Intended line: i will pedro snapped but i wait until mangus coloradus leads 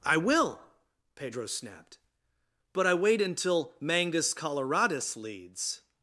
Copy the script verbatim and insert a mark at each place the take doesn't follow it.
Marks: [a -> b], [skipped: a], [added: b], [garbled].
i will pedro snapped but i wait until mangus coloradus leads